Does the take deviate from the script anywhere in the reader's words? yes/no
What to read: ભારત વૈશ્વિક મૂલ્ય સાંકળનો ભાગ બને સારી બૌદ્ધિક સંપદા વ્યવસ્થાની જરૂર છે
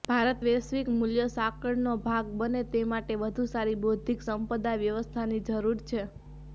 yes